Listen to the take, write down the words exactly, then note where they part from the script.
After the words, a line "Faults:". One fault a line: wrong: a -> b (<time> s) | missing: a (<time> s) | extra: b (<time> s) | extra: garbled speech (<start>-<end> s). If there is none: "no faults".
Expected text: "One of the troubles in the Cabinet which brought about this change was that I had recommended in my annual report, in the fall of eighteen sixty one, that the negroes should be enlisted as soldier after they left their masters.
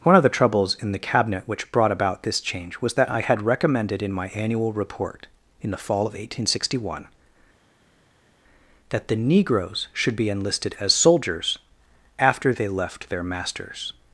"One of the troubles in the Cabinet which brought about this change was that I had recommended in my annual report, in the fall of eighteen sixty one, that the negroes should be enlisted as soldiers after they left their masters.
Faults:
wrong: soldier -> soldiers (10.9 s)